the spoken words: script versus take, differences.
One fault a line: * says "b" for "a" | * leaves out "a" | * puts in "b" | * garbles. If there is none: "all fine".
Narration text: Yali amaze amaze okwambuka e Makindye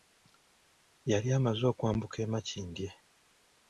* leaves out "amaze"